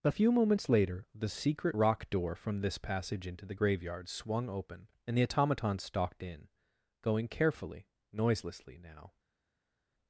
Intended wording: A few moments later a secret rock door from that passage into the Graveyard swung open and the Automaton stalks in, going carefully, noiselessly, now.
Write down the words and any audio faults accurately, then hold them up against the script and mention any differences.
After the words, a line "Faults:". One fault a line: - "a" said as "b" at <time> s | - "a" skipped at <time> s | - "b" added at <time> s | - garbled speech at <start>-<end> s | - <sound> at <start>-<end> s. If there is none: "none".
A few moments later the secret rock door from this passage into the Graveyard swung open and the Automaton stalked in, going carefully, noiselessly, now.
Faults:
- "a" said as "the" at 1.1 s
- "that" said as "this" at 2.6 s
- "stalks" said as "stalked" at 5.8 s